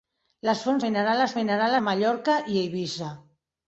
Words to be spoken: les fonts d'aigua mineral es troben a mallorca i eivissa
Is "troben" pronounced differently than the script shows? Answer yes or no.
yes